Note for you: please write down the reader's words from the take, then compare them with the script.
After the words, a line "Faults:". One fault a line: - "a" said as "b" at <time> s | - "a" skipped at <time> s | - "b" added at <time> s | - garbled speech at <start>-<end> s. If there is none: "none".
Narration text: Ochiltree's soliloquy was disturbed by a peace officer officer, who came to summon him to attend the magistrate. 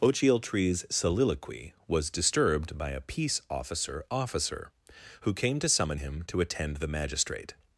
Ochiltree's soliloquy was disturbed by a peace officer officer, who came to summon him to attend the magistrate.
Faults:
none